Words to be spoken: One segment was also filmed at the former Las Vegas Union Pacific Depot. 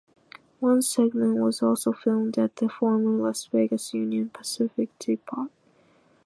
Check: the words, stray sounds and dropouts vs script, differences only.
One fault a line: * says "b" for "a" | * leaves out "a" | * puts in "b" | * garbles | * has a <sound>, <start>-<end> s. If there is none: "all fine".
all fine